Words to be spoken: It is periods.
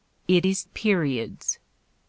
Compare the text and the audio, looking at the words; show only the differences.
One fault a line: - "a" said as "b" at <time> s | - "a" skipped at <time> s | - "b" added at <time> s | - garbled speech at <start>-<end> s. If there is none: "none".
none